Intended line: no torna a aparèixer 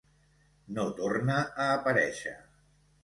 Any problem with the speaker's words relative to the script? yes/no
no